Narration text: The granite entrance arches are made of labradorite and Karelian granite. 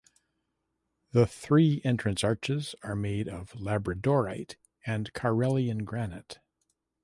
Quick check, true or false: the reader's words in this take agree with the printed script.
false